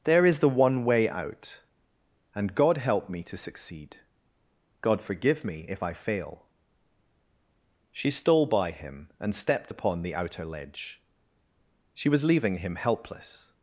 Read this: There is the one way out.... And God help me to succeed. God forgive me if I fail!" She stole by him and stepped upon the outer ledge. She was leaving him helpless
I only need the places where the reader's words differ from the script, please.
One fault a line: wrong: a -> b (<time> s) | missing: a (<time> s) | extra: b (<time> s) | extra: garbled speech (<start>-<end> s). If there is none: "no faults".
no faults